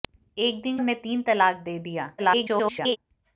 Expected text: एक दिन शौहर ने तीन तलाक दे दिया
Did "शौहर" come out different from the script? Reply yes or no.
yes